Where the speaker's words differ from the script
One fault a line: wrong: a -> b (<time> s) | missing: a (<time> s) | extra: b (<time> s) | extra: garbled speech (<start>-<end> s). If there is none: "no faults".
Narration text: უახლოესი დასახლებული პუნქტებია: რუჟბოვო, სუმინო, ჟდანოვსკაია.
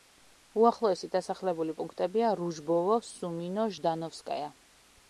no faults